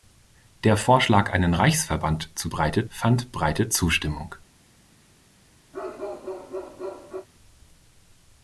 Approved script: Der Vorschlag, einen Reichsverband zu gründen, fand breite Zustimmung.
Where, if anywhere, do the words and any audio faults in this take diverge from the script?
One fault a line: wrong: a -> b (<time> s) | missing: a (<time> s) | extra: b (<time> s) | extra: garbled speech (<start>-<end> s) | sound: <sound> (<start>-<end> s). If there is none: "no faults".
wrong: gründen -> breite (2.5 s)
sound: bark (5.7-7.3 s)